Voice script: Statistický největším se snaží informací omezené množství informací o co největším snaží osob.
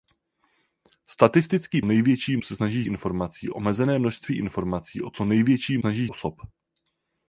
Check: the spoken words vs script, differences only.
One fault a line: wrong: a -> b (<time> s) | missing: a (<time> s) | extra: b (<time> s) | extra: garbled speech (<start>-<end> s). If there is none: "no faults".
no faults